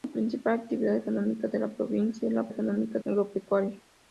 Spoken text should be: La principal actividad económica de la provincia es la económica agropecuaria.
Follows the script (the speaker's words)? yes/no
yes